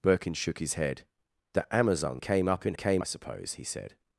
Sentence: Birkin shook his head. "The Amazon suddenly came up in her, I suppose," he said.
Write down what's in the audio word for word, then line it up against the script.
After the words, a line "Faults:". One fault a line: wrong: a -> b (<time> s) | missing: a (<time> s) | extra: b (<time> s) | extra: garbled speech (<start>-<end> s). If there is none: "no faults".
Birkin shook his head. "The Amazon came up in came, I suppose," he said.
Faults:
missing: suddenly (2.2 s)
wrong: her -> came (2.7 s)